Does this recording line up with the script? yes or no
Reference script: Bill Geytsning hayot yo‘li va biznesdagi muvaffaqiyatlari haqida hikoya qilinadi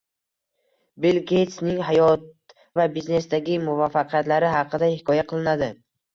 no